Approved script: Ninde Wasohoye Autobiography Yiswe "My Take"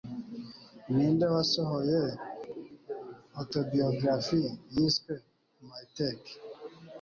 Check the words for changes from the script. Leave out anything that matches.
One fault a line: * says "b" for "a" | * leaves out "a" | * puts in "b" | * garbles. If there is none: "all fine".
all fine